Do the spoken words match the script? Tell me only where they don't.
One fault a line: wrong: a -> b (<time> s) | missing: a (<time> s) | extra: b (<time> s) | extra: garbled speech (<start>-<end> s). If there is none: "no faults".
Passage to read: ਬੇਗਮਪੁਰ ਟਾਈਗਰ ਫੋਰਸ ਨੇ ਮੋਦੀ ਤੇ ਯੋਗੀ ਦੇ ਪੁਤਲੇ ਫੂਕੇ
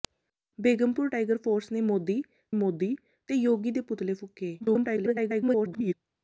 extra: ਮੋਦੀ (2.5 s)
extra: garbled speech (4.6-5.9 s)